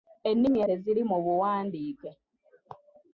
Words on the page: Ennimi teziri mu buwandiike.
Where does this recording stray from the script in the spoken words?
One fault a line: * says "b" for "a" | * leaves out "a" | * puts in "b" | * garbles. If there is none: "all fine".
all fine